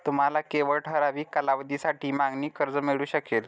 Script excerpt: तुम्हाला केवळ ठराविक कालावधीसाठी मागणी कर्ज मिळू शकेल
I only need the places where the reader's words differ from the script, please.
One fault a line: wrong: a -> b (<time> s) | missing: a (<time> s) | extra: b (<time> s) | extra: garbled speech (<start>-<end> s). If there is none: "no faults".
no faults